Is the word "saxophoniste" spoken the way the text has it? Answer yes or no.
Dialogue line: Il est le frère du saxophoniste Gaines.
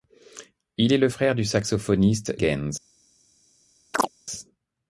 yes